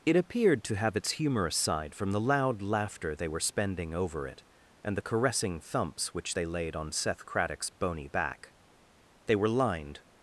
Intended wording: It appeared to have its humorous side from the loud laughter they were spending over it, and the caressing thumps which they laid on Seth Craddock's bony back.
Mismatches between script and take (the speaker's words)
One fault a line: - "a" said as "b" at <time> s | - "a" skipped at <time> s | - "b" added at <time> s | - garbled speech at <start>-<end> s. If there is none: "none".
- "They were lined" added at 9.3 s